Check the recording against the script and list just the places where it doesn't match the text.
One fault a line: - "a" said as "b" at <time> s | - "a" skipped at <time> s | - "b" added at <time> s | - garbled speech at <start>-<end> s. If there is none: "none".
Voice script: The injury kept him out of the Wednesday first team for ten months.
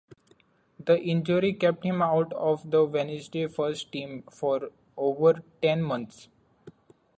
- "over" added at 5.0 s